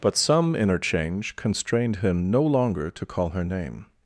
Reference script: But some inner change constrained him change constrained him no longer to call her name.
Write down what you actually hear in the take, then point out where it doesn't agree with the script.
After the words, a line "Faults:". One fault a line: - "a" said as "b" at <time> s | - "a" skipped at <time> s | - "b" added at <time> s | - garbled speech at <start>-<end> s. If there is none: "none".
But some inner change constrained him no longer to call her name.
Faults:
- "change constrained him" skipped at 2.3 s